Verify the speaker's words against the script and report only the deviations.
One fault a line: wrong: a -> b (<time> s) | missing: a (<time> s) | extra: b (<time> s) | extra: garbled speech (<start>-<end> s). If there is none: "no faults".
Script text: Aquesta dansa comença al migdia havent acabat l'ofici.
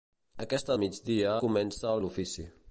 wrong: dansa -> migdia (0.8 s)
missing: migdia havent acabat (2.0 s)